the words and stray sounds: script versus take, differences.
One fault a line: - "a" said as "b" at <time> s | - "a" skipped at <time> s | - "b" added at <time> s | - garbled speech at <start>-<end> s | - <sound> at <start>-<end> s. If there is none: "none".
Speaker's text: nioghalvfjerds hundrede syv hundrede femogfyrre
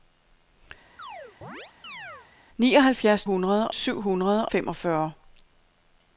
- chirp at 1.0-2.3 s